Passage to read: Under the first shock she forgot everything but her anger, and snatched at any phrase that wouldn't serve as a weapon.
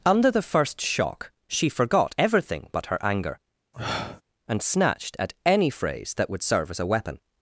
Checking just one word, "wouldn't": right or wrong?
wrong